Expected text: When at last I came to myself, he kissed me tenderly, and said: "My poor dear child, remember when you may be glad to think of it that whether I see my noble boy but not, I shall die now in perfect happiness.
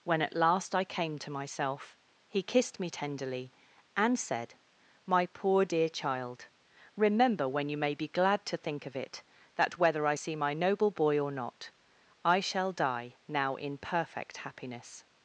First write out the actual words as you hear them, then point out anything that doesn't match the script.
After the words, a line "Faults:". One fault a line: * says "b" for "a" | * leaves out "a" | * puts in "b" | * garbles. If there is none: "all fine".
When at last I came to myself, he kissed me tenderly, and said: "My poor dear child, remember when you may be glad to think of it that whether I see my noble boy or not, I shall die now in perfect happiness.
Faults:
* says "or" for "but"